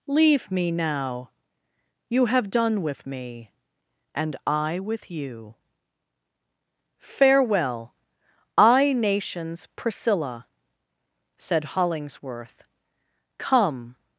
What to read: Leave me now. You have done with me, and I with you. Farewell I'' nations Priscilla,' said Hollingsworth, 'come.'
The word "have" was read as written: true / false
true